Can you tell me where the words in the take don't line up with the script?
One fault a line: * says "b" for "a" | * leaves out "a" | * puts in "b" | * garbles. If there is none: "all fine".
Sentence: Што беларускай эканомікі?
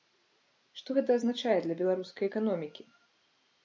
* puts in "гэта азначае для"